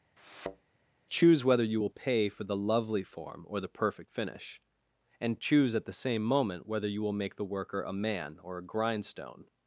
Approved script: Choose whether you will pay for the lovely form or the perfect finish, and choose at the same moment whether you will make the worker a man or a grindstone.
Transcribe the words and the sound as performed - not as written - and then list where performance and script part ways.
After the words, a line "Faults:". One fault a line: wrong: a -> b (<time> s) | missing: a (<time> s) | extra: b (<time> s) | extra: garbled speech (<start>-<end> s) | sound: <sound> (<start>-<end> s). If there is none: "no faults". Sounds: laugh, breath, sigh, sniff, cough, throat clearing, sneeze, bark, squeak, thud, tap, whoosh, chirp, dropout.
Choose whether you will pay for the lovely form or the perfect finish, and choose at the same moment whether you will make the worker a man or a grindstone.
Faults:
sound: thud (0.2-0.7 s)